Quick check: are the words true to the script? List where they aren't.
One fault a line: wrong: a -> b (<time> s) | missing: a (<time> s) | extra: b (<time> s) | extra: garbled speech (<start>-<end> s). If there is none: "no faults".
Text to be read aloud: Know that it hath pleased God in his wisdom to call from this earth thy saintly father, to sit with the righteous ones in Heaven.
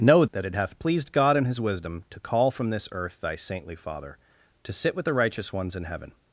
no faults